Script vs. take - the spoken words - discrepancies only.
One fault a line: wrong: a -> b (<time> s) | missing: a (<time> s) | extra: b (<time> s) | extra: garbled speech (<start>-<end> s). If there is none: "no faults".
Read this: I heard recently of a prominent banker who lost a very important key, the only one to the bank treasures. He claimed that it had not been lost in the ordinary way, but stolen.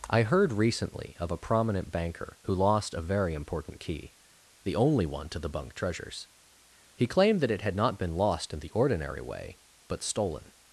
wrong: bank -> bunk (5.5 s)